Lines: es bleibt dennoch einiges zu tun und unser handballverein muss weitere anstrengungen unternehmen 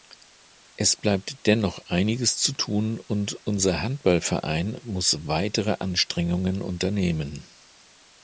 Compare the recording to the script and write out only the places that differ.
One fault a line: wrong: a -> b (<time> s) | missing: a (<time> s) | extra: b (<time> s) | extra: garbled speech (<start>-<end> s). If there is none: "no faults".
no faults